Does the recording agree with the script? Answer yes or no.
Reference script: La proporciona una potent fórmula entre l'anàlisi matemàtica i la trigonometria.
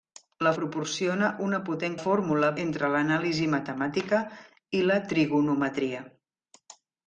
yes